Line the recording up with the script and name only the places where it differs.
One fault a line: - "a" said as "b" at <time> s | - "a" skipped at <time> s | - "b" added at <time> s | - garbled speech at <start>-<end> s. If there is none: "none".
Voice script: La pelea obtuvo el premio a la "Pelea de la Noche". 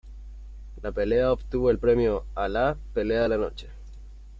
none